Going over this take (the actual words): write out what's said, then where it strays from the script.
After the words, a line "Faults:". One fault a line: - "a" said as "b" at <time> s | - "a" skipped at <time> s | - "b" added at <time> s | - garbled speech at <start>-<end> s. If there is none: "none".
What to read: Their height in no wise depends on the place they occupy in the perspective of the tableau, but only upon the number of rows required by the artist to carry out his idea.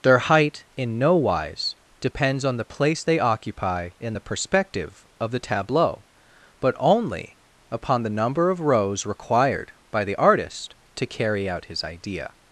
Their height in no wise depends on the place they occupy in the perspective of the tableau, but only upon the number of rows required by the artist to carry out his idea.
Faults:
none